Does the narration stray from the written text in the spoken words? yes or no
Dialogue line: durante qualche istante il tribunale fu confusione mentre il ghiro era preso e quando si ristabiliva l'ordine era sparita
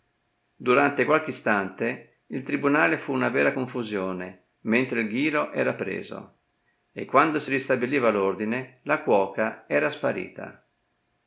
yes